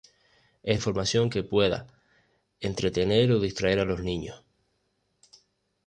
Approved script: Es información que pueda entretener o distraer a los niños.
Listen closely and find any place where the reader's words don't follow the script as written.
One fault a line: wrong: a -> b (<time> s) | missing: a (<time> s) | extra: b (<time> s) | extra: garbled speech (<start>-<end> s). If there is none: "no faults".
no faults